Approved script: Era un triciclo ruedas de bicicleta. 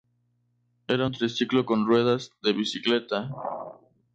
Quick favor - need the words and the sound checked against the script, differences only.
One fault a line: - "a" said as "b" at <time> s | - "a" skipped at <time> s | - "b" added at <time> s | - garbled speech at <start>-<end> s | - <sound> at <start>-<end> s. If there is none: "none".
- "con" added at 1.7 s